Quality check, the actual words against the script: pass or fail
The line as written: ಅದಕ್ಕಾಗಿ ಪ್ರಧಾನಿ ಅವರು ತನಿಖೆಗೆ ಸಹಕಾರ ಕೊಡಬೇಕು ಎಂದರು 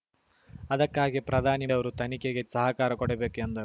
pass